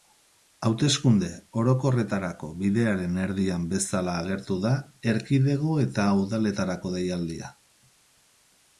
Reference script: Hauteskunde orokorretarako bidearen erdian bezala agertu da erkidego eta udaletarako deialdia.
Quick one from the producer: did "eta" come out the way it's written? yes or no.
yes